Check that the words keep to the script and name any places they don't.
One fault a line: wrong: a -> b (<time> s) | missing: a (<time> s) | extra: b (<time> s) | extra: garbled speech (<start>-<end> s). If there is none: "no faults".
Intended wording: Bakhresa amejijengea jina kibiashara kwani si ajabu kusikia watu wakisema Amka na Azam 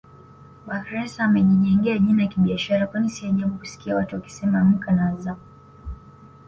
no faults